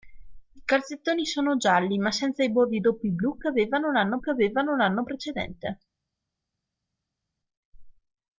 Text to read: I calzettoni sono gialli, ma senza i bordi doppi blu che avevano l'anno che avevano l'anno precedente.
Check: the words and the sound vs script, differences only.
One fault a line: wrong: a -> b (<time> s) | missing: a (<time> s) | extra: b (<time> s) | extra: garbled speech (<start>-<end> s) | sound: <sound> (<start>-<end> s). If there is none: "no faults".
no faults